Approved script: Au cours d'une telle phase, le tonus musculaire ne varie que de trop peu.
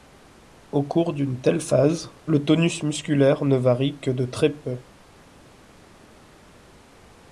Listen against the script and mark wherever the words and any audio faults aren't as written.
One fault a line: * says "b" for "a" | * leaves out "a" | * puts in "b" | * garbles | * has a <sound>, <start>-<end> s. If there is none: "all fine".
* says "très" for "trop"